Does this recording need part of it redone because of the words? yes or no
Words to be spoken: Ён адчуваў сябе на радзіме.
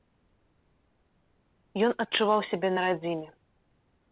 no